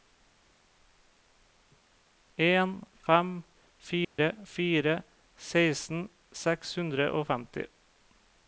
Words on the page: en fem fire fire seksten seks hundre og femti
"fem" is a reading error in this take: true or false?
false